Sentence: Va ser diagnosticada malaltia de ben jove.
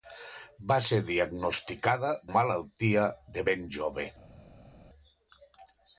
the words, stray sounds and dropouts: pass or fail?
pass